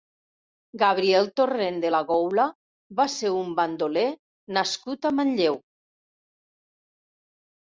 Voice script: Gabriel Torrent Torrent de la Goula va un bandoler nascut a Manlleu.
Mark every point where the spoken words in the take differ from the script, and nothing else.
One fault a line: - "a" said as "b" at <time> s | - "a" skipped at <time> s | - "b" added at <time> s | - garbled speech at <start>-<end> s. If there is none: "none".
- "Torrent" skipped at 1.8 s
- "ser" added at 3.1 s